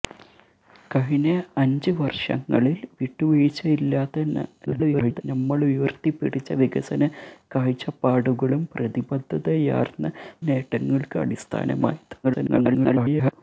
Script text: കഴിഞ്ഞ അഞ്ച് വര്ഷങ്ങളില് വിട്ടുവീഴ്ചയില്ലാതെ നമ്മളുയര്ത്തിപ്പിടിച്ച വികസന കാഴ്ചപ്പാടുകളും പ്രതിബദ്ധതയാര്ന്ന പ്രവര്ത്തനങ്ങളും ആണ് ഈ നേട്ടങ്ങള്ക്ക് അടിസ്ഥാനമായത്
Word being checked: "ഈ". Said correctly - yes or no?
no